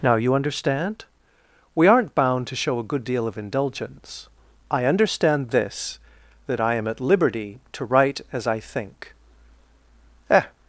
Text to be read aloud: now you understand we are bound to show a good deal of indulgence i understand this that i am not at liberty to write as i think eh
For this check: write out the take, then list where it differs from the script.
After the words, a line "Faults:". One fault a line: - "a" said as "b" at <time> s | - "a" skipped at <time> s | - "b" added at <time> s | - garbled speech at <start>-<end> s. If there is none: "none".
now you understand we aren't bound to show a good deal of indulgence i understand this that i am at liberty to write as i think eh
Faults:
- "are" said as "aren't" at 1.9 s
- "not" skipped at 6.9 s